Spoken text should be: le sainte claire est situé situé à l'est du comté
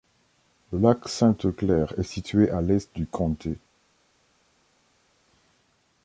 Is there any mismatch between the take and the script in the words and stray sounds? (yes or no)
yes